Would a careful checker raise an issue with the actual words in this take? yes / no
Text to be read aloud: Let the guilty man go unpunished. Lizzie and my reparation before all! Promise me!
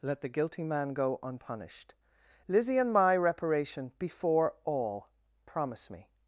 no